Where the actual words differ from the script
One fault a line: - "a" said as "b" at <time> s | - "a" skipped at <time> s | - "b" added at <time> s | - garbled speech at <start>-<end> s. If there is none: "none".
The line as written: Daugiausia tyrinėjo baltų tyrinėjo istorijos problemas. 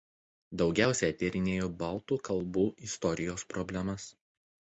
- "tyrinėjo" said as "kalbų" at 2.3 s